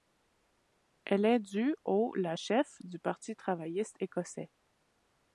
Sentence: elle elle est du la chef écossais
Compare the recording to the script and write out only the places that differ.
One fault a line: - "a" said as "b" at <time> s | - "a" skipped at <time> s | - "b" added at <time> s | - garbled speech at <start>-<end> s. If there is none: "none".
- "elle" skipped at 1.2 s
- "au" added at 1.8 s
- "du parti travailliste" added at 2.8 s